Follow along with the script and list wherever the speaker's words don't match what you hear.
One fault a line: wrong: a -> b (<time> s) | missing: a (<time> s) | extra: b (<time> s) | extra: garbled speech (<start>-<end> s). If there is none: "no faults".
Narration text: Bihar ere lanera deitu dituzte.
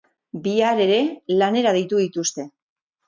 no faults